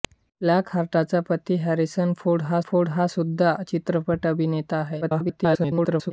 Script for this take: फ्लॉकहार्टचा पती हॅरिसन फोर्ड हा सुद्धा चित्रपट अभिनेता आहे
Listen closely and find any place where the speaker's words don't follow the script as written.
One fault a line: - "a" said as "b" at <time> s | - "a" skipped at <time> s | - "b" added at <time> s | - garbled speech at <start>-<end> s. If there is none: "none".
- "फोर्ड हा" added at 2.6 s
- garbled speech at 5.0-6.1 s